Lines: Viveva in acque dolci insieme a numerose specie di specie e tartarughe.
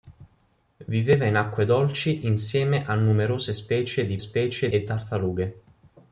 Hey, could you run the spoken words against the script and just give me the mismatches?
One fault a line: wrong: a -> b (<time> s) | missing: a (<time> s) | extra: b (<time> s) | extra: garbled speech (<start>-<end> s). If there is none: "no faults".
no faults